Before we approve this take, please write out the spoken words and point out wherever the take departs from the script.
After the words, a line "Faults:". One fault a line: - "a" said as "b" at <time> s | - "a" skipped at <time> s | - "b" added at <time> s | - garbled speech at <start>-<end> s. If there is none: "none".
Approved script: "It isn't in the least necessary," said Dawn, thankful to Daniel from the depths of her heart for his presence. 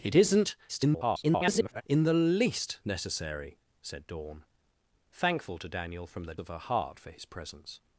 "It isn't [garbled] in the least necessary," said Dawn, thankful to Daniel from the of her heart for his presence.
Faults:
- garbled speech at 0.7-1.8 s
- "depths" skipped at 6.4 s